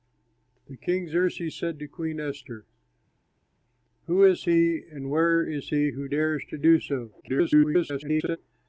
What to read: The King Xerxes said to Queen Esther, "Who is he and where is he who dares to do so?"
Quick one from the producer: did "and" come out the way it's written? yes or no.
yes